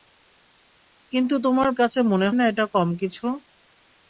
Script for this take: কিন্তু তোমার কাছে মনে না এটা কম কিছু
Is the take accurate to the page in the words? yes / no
yes